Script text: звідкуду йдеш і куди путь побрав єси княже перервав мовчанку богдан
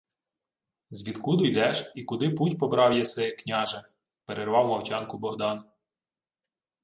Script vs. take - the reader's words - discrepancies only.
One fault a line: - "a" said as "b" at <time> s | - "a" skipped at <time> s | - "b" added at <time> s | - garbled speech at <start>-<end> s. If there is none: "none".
none